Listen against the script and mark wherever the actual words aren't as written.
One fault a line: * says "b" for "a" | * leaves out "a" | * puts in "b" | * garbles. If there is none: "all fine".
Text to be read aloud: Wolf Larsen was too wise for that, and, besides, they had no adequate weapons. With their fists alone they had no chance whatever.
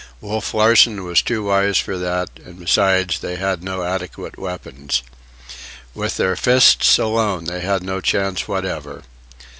all fine